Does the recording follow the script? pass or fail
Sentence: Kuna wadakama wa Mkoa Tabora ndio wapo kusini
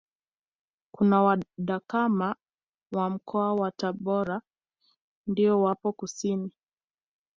fail